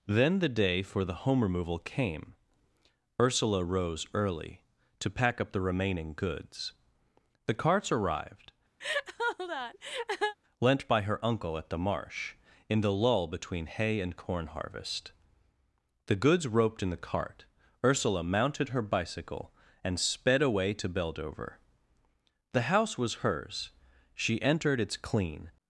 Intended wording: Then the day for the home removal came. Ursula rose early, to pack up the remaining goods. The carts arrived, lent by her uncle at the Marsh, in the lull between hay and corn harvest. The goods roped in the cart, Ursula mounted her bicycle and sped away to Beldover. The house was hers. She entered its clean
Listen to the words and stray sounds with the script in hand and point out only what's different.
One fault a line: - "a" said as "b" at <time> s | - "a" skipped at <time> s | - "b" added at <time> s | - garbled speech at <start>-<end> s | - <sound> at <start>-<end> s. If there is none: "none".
- laugh at 8.8-10.4 s